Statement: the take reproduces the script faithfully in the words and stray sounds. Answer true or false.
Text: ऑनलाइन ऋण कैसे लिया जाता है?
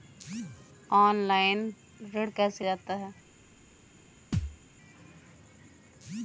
false